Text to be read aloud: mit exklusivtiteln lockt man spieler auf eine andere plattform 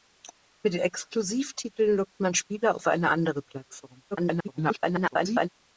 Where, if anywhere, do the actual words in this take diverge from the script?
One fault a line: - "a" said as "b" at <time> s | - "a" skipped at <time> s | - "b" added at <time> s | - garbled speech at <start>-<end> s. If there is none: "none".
- garbled speech at 4.1-5.5 s